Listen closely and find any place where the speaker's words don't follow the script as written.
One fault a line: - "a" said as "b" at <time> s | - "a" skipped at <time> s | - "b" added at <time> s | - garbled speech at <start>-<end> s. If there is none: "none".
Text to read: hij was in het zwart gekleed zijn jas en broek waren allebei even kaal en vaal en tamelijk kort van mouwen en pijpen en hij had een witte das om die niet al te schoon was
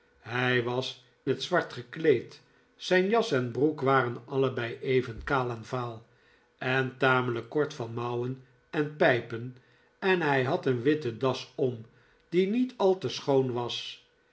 - "in" skipped at 1.1 s